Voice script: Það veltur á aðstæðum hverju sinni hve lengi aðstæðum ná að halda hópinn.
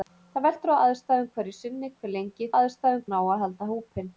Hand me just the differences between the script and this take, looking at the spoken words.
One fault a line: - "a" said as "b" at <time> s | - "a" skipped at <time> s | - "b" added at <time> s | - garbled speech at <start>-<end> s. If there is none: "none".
none